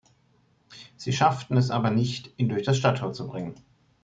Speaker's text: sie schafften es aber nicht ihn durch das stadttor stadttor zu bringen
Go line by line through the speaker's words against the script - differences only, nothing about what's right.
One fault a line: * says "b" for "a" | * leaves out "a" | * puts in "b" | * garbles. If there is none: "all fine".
* leaves out "stadttor"